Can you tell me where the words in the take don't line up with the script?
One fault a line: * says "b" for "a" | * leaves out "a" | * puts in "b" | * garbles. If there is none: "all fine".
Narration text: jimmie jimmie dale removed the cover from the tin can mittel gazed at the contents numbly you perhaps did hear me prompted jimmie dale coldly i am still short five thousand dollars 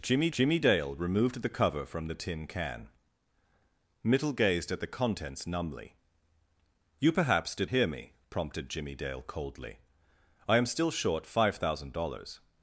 all fine